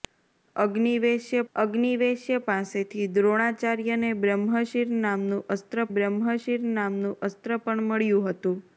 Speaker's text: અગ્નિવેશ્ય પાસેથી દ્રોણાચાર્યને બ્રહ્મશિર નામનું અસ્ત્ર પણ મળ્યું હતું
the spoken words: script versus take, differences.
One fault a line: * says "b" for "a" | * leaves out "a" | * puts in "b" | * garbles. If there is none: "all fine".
* puts in "અગ્નિવેશ્ય"
* puts in "બ્રહ્મશિર નામનું અસ્ત્ર"